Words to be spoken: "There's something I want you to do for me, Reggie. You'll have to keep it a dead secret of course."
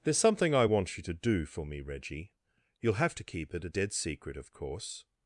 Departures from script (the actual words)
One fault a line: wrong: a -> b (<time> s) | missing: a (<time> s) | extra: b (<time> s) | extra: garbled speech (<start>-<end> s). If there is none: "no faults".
no faults